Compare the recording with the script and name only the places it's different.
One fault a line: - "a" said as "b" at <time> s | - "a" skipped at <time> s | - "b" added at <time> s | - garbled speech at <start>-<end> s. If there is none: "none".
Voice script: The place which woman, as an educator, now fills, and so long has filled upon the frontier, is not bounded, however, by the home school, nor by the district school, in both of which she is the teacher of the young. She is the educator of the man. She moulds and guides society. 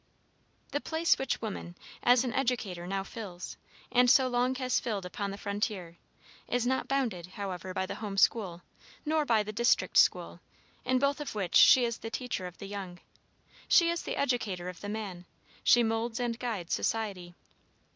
none